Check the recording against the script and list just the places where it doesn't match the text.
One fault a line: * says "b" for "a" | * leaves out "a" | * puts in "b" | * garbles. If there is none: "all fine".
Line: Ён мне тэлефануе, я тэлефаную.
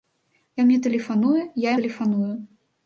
all fine